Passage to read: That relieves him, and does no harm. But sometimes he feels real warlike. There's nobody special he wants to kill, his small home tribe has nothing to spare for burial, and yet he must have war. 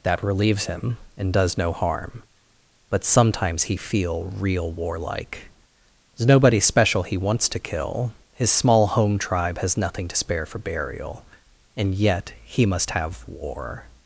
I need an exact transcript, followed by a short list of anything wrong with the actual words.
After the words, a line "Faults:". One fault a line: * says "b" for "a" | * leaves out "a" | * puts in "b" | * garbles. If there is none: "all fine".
That relieves him, and does no harm. But sometimes he feel real warlike. There's nobody special he wants to kill, his small home tribe has nothing to spare for burial, and yet he must have war.
Faults:
* says "feel" for "feels"